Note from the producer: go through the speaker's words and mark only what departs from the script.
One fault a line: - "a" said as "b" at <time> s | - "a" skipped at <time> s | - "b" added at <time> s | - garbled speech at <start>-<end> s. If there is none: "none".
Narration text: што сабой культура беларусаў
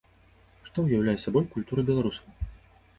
- "ўяўляе" added at 0.9 s